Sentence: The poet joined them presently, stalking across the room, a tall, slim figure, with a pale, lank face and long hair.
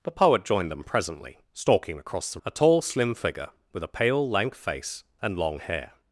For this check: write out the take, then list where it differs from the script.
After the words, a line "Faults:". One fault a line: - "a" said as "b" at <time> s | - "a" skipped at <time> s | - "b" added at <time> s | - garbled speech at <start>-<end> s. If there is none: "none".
The poet joined them presently, stalking across the a tall, slim figure, with a pale, lank face and long hair.
Faults:
- "room" skipped at 2.4 s